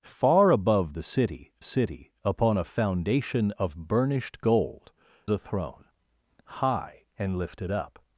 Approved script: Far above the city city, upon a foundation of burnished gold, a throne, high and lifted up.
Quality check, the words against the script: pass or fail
pass